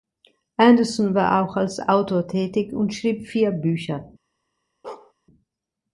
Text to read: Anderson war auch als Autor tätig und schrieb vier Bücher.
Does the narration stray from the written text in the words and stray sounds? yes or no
yes